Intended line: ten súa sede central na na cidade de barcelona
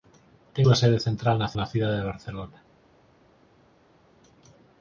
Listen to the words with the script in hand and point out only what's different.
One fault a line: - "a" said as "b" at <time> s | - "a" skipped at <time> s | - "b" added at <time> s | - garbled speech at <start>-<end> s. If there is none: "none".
none